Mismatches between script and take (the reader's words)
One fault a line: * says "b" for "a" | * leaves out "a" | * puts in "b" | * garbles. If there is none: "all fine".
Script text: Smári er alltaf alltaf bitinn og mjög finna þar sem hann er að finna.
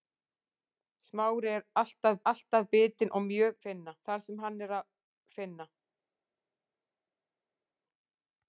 all fine